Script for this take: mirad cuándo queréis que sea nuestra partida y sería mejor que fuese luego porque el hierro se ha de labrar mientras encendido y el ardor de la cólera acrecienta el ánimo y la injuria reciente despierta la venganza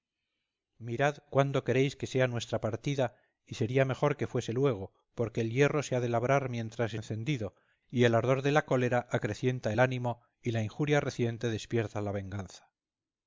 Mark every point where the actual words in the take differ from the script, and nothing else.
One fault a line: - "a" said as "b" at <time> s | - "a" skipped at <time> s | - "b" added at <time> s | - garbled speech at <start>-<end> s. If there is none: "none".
none